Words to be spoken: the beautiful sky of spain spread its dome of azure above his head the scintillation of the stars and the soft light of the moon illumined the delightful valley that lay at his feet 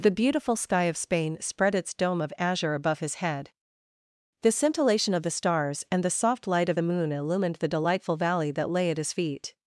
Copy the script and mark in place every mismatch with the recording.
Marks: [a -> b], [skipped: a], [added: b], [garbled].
the beautiful sky of spain spread its dome of azure above his head the scintillation of the stars and the soft light of the moon illumined the delightful valley that lay at his feet